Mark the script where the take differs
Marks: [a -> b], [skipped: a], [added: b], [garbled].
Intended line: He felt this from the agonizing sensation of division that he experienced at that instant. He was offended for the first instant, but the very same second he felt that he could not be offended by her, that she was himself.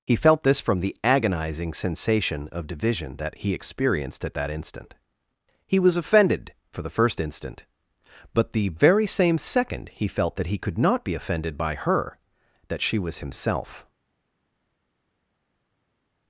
He felt this from the agonizing sensation of division that he experienced at that instant. He was offended for the first instant, but the very same second he felt that he could not be offended by her, that she was himself.